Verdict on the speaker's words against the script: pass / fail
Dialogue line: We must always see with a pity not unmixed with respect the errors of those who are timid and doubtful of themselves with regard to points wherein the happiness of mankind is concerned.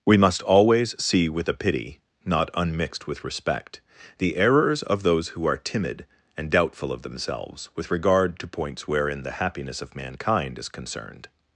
pass